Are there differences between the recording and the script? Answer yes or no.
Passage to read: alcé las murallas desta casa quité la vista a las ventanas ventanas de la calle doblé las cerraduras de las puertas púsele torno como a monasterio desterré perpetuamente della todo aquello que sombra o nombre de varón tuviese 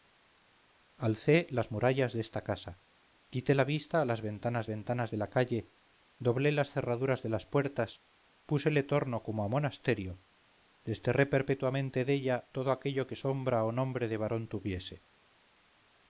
no